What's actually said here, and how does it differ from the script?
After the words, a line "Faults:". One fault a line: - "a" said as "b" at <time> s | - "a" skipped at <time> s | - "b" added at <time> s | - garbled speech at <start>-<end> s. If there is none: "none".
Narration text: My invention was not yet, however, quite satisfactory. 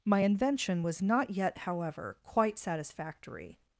My invention was not yet, however, quite satisfactory.
Faults:
none